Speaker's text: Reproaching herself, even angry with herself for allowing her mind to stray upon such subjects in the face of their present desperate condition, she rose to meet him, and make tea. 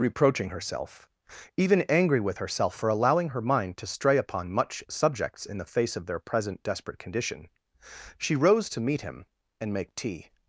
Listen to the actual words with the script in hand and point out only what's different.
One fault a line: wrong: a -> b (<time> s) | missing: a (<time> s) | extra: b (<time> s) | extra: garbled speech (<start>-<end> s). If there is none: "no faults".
wrong: such -> much (4.5 s)